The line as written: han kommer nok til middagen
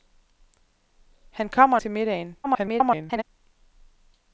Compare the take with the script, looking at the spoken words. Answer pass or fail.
fail